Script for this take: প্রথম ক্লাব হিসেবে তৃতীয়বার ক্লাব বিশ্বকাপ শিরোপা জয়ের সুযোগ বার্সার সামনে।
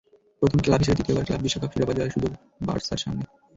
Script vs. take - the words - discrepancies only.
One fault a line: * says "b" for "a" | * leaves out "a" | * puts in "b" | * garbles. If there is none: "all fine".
all fine